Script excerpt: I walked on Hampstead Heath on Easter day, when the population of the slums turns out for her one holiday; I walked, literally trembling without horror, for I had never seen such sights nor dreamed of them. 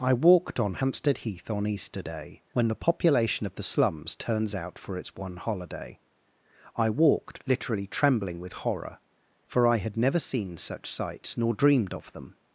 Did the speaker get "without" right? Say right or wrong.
wrong